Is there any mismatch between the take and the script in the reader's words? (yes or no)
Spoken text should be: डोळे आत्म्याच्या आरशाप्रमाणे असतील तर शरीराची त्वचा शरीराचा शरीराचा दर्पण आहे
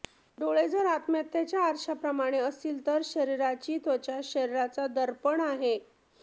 yes